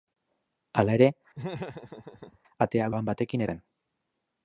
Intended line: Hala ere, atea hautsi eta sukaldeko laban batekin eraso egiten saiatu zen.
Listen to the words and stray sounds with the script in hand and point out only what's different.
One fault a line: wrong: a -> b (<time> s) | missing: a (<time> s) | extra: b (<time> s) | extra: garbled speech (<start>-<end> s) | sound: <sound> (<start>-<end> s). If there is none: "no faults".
sound: laugh (1.3-2.4 s)
missing: hautsi eta sukaldeko (2.9 s)
missing: eraso egiten saiatu (3.5 s)